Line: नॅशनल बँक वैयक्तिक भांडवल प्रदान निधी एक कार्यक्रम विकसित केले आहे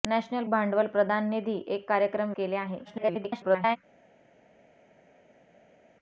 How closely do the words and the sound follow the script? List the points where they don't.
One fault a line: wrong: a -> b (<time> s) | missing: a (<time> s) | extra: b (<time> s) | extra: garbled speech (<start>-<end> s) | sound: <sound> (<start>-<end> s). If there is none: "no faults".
missing: बँक वैयक्तिक (0.4 s)
missing: विकसित (2.3 s)
extra: garbled speech (2.8-3.8 s)